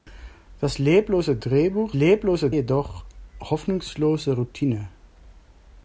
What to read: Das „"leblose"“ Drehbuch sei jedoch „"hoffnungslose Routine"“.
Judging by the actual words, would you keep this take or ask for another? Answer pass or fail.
fail